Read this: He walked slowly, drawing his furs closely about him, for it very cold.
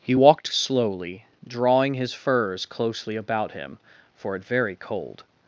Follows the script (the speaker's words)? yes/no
yes